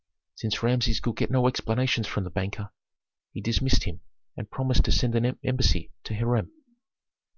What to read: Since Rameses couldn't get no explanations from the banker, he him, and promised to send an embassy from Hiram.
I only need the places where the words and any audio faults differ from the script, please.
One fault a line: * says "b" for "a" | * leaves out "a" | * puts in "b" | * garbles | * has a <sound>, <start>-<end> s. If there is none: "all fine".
* says "could" for "couldn't"
* puts in "dismissed"
* says "to" for "from"